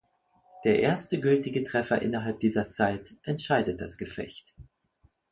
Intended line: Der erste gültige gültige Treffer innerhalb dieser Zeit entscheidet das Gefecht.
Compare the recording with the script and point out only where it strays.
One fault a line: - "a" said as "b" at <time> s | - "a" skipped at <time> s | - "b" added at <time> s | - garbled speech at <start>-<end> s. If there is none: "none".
- "gültige" skipped at 1.6 s